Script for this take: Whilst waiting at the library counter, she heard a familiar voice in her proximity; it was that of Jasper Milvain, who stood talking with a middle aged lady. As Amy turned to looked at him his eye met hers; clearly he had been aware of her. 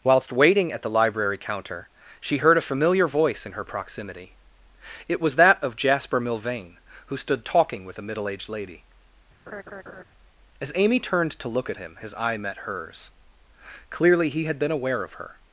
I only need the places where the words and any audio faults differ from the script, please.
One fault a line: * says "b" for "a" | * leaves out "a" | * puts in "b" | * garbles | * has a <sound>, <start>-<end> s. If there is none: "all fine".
* has a laugh, 9.5-10.0 s
* says "look" for "looked"